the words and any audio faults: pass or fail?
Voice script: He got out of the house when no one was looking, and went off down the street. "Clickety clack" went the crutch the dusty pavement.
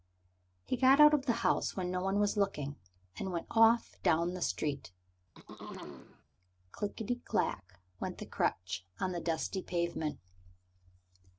fail